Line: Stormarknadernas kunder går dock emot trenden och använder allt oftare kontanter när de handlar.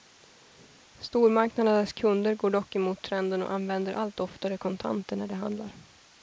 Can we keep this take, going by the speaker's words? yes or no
yes